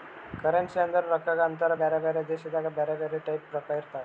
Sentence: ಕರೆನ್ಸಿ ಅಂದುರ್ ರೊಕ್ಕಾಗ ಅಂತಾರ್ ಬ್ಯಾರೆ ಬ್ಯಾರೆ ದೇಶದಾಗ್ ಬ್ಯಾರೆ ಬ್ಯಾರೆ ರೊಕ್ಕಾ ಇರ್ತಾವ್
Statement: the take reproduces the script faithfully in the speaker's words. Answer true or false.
false